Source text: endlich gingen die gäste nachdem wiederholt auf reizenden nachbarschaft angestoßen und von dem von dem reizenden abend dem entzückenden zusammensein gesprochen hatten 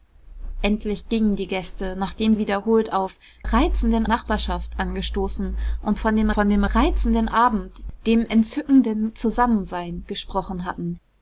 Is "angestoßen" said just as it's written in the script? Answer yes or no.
yes